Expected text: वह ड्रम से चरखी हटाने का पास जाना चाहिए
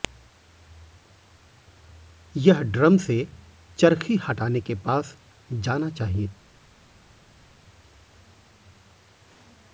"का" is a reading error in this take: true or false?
true